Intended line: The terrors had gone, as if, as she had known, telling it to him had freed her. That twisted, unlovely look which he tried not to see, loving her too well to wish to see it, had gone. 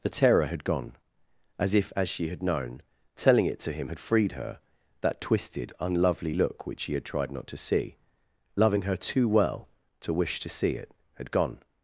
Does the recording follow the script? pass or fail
fail